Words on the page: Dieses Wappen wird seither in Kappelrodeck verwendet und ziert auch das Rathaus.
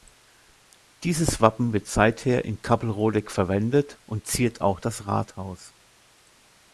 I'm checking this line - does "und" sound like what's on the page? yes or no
yes